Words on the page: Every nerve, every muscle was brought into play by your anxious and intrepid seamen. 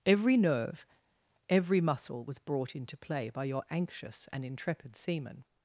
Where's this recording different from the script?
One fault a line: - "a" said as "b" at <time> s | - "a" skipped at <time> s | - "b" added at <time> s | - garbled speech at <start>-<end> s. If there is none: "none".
none